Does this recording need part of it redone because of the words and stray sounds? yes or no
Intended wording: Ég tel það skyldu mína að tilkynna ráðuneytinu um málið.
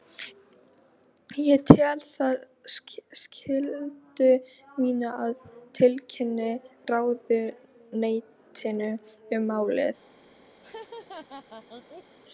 yes